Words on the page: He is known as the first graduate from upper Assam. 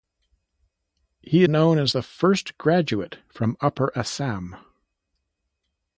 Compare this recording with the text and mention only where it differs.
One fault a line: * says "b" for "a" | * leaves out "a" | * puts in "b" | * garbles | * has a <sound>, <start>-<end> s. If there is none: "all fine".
* leaves out "is"